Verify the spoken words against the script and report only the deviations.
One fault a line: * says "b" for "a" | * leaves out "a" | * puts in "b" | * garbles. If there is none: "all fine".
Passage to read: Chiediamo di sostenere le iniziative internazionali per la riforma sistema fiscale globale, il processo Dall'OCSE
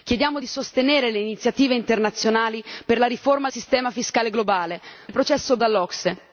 all fine